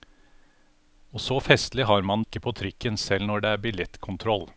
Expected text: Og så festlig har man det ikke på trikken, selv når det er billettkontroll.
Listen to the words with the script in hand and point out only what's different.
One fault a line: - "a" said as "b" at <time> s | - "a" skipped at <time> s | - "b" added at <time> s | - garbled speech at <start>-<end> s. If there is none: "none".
- "det" skipped at 2.2 s